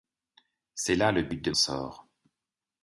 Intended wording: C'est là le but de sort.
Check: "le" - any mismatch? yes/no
no